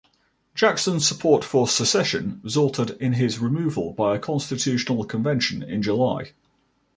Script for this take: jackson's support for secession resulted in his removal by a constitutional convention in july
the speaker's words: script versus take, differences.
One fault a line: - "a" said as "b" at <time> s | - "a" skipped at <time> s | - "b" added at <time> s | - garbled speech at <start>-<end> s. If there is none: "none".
none